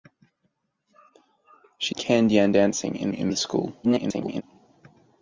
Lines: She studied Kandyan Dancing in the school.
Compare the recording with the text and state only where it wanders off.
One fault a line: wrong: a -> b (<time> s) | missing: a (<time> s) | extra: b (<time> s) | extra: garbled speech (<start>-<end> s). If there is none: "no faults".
missing: studied (1.9 s)
extra: in (3.1 s)
extra: garbled speech (3.8-4.4 s)